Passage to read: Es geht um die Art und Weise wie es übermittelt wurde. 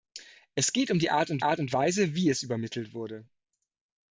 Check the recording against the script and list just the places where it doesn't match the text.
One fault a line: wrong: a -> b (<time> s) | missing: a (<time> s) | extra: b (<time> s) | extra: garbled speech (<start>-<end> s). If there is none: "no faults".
extra: Art und (1.4 s)